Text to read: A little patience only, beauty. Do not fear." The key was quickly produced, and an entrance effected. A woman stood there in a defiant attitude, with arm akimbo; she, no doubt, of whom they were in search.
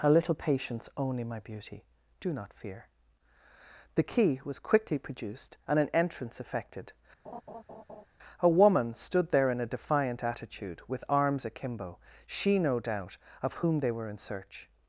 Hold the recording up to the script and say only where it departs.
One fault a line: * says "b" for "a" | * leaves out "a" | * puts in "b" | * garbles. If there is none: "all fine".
* puts in "my"
* says "arms" for "arm"